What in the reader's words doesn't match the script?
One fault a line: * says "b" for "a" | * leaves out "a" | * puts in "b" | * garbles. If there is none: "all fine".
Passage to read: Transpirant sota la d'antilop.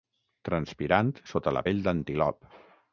* puts in "pell"